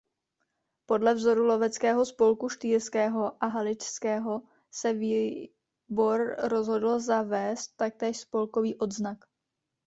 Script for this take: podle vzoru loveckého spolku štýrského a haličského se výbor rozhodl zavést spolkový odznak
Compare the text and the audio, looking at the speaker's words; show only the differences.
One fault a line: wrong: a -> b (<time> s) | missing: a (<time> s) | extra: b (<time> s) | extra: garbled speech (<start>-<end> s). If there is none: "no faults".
extra: taktéž (7.8 s)